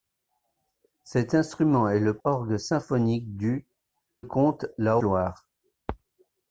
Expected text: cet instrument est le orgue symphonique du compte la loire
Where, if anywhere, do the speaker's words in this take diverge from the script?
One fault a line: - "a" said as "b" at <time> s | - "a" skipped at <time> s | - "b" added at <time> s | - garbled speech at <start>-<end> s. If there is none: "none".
none